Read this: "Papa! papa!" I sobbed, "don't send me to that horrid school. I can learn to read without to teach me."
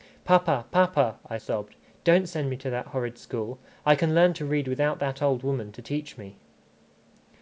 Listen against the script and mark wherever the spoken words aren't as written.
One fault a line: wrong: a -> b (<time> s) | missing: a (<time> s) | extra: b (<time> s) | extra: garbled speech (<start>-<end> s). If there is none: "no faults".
extra: that old woman (5.0 s)